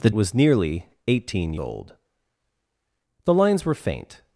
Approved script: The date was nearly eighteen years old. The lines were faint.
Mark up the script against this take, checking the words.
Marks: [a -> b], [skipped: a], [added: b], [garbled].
The [skipped: date] was nearly eighteen [skipped: years] old. The lines were faint.